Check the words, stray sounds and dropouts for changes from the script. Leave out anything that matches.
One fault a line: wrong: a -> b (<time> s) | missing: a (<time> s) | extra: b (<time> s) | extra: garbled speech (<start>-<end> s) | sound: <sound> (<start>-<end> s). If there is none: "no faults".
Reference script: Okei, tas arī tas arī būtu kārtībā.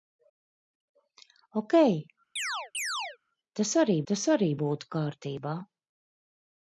sound: chirp (2.4-3.2 s)